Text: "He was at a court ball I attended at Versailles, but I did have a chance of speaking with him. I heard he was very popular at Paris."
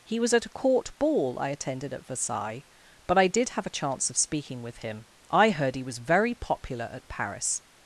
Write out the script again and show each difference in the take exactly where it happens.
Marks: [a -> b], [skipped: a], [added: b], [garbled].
"He was at a court ball I attended at Versailles, but I did have a chance of speaking with him. I heard he was very popular at Paris."